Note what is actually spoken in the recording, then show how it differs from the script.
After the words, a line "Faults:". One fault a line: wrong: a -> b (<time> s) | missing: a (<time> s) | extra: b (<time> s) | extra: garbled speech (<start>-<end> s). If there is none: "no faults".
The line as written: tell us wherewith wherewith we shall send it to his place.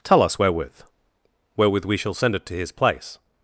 tell us wherewith wherewith we shall send it to his place.
Faults:
no faults